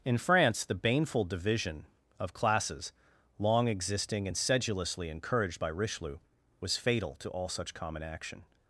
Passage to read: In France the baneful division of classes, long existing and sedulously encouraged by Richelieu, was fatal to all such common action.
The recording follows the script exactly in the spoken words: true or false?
true